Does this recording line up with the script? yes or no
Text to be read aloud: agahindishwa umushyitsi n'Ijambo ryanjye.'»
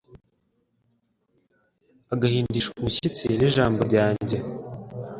yes